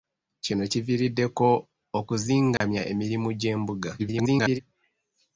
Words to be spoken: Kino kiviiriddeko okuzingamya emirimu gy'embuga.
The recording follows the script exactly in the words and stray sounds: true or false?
false